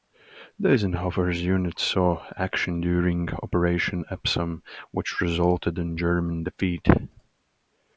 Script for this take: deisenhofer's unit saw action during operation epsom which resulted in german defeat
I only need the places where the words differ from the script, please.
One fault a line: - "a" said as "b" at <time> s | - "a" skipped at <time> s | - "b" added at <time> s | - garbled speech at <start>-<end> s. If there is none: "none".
none